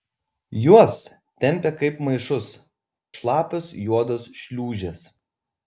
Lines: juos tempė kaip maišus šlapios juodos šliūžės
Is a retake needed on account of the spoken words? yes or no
no